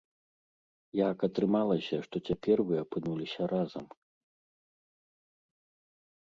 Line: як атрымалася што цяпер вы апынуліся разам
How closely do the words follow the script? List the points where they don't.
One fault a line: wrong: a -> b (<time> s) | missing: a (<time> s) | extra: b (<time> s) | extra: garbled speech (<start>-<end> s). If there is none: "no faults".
no faults